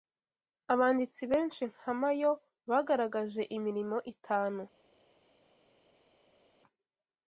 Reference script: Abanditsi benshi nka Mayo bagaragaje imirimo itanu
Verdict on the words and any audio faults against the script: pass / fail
pass